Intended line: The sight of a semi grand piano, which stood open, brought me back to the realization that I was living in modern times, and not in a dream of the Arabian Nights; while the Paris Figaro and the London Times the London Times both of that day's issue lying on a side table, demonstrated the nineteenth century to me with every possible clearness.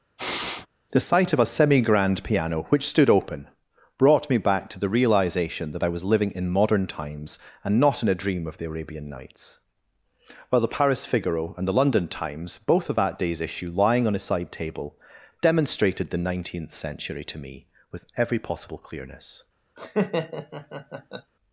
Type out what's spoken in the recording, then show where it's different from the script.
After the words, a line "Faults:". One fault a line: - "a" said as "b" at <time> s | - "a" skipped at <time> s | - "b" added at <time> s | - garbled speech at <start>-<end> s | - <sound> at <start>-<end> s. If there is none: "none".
The sight of a semi grand piano, which stood open, brought me back to the realization that I was living in modern times, and not in a dream of the Arabian Nights; while the Paris Figaro and the London Times both of that day's issue lying on a side table, demonstrated the nineteenth century to me with every possible clearness.
Faults:
- sniff at 0.2-0.7 s
- "the London Times" skipped at 12.6 s
- laugh at 19.8-21.3 s